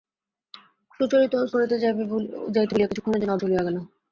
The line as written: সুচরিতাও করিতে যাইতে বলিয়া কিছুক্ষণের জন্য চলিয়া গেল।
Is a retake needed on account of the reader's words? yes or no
no